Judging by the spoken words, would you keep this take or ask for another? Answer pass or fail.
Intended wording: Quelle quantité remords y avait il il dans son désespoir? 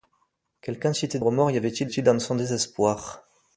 pass